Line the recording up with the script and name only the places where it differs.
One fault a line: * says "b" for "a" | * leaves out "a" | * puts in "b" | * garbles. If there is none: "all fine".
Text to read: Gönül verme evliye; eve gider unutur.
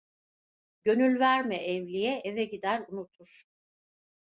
all fine